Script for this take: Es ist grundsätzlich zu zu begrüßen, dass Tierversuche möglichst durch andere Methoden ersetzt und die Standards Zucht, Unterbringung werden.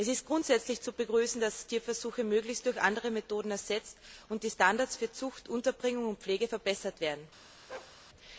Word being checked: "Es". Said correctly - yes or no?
yes